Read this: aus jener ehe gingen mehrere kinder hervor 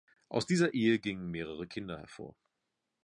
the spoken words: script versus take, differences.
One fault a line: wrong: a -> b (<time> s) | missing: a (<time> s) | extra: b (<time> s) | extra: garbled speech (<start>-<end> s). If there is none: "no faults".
wrong: jener -> dieser (0.5 s)